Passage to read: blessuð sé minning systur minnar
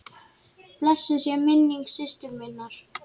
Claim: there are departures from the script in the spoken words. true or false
false